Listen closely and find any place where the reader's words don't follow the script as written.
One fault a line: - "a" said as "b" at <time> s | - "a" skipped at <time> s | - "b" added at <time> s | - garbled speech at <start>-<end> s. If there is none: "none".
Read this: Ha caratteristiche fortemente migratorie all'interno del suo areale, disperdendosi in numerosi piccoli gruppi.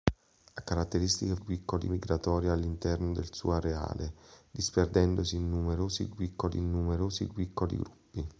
- "fortemente" said as "piccoli" at 1.3 s
- "in numerosi piccoli" added at 6.6 s